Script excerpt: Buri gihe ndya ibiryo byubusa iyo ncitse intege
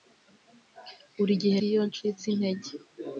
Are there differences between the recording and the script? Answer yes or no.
yes